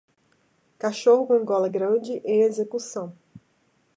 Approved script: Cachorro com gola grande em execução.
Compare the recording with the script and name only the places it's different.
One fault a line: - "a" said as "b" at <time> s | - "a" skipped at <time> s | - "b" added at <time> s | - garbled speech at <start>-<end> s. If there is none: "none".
none